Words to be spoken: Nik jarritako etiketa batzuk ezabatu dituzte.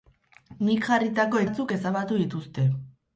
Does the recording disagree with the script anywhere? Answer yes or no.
yes